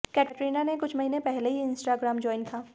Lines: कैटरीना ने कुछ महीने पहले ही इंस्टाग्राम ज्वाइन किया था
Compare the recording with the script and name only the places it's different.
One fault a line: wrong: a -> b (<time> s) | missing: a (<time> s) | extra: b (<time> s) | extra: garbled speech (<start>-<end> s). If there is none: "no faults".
missing: किया (2.5 s)